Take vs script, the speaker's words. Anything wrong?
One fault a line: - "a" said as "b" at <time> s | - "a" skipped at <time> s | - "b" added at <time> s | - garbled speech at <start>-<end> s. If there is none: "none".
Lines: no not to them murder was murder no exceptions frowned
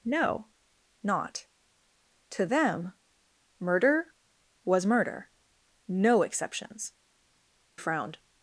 none